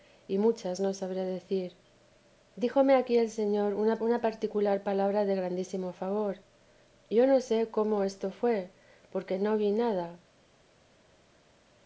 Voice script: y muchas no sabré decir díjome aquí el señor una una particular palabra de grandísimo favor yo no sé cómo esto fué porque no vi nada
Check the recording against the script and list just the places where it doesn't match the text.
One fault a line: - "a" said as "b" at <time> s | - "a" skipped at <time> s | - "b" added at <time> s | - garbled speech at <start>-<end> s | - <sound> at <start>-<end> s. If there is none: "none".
none